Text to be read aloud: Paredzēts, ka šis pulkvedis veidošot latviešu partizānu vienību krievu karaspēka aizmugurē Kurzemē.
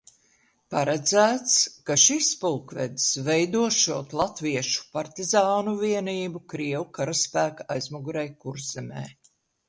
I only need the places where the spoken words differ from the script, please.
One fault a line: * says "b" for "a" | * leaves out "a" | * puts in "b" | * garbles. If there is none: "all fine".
all fine